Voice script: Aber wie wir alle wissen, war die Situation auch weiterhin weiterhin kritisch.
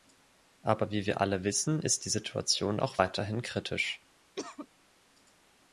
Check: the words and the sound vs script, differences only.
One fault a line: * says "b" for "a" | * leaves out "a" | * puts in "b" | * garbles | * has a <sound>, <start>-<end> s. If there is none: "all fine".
* says "ist" for "war"
* leaves out "weiterhin"
* has a cough, 4.4-4.7 s